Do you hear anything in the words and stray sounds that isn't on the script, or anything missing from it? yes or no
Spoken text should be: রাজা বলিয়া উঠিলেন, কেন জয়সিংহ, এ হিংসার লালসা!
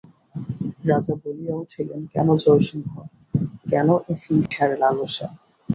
yes